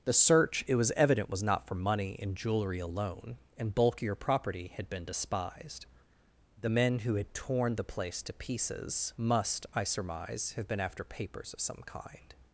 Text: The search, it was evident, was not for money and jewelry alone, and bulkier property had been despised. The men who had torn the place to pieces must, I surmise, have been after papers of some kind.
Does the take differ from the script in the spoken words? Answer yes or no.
no